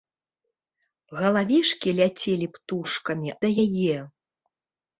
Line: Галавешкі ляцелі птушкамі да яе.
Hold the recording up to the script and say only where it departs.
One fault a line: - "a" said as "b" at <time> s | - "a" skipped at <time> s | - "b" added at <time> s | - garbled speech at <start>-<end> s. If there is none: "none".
none